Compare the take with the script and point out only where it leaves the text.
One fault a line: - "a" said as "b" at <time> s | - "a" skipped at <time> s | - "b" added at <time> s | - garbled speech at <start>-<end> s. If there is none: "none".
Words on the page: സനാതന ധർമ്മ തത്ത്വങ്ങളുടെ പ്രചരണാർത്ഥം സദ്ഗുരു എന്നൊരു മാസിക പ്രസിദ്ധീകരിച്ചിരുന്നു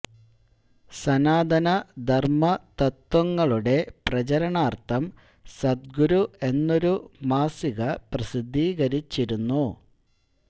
none